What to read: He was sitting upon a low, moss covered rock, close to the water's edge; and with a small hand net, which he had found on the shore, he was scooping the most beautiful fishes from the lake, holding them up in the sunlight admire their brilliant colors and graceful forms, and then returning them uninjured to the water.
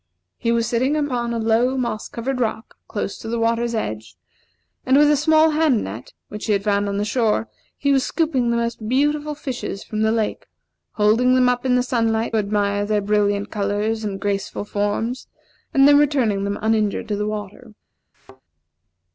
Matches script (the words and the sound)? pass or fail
fail